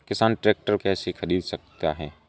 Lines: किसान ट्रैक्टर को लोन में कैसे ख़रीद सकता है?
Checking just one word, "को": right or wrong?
wrong